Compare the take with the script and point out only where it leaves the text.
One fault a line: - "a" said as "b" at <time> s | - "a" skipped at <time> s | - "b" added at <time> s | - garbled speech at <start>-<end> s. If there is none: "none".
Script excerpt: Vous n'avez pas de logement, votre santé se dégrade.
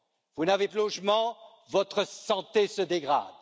- "pas" skipped at 0.7 s